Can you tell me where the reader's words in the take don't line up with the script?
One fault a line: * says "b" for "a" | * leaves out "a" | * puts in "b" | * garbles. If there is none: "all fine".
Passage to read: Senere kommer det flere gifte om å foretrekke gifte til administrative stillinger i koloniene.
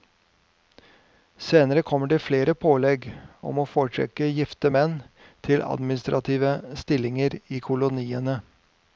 * says "pålegg" for "gifte"
* puts in "menn"